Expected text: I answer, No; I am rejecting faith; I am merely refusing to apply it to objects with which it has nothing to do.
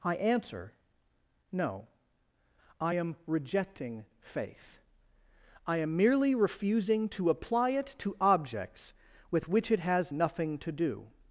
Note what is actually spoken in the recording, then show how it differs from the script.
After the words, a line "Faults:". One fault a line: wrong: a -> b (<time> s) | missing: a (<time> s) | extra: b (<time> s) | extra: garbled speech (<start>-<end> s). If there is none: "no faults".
I answer, No; I am rejecting faith; I am merely refusing to apply it to objects with which it has nothing to do.
Faults:
no faults